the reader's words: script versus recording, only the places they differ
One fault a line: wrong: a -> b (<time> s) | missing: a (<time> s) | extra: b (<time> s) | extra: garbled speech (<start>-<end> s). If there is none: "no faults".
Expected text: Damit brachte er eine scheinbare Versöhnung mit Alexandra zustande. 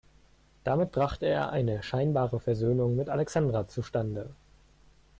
no faults